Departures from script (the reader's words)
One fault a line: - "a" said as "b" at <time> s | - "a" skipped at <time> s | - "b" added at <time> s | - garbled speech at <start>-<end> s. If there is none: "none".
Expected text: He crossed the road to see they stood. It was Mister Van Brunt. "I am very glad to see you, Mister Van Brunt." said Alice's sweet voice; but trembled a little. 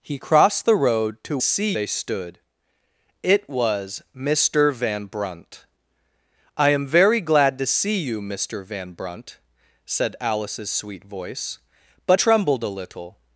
none